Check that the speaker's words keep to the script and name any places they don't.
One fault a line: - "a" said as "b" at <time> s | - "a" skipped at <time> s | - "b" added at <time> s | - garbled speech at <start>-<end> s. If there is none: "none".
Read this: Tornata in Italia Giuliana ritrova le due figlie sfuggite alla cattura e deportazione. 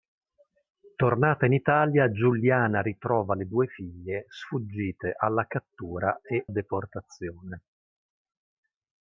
none